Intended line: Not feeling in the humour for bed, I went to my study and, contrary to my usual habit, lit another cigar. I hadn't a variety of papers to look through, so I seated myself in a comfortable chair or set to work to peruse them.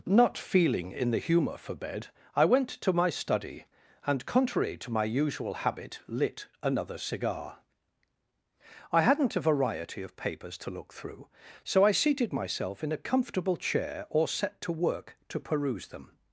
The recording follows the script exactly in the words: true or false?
true